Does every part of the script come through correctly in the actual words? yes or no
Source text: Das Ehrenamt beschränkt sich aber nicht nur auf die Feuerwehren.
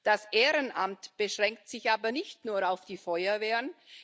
yes